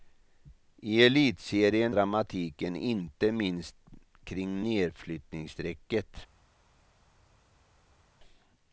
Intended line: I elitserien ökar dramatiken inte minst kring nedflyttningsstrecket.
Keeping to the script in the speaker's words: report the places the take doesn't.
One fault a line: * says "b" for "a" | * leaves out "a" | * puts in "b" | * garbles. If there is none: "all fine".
* leaves out "ökar"